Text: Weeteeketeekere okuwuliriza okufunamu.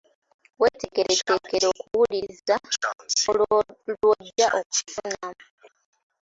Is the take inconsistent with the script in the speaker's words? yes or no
yes